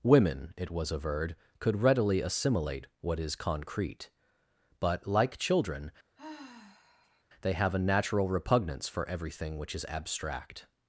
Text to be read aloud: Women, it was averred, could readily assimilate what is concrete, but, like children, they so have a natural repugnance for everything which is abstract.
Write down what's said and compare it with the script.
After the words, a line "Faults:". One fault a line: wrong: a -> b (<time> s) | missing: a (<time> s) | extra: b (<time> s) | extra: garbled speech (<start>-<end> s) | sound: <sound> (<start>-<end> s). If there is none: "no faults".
Women, it was averred, could readily assimilate what is concrete, but, like children, they have a natural repugnance for everything which is abstract.
Faults:
sound: sigh (6.2-7.2 s)
missing: so (7.5 s)